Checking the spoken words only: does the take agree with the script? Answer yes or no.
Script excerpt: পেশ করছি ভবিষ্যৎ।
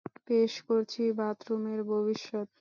no